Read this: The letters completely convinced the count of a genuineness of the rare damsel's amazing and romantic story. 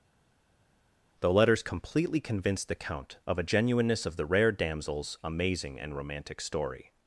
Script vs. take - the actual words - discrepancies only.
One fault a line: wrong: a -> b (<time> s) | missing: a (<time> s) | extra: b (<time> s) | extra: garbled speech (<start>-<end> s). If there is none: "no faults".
no faults